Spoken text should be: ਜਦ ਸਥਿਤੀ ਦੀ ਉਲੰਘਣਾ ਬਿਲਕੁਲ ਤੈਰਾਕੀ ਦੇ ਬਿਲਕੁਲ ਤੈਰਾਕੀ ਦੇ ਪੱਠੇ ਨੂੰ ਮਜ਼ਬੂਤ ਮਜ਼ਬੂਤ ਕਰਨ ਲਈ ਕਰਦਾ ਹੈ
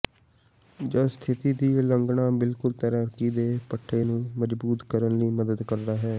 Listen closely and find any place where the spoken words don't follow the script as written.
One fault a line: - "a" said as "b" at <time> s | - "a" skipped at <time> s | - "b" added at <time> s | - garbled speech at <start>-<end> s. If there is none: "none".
- "ਬਿਲਕੁਲ ਤੈਰਾਕੀ ਦੇ" skipped at 3.5 s
- "ਮਜ਼ਬੂਤ" skipped at 4.8 s
- "ਮਦਦ" added at 5.3 s